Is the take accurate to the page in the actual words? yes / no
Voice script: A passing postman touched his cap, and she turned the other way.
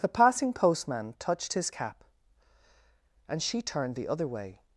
no